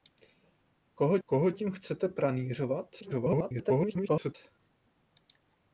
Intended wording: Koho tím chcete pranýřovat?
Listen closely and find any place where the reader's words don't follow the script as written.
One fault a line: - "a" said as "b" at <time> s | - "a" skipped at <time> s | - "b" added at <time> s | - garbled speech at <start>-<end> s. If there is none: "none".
- "koho" added at 1.3 s
- garbled speech at 3.0-4.3 s